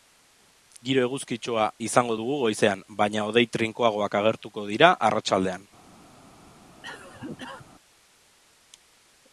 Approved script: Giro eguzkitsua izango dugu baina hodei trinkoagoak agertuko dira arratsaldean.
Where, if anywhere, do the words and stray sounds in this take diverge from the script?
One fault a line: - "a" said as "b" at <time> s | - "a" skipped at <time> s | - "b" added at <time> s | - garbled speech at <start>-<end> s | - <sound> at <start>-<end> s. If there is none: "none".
- "goizean" added at 2.4 s
- cough at 6.8-7.7 s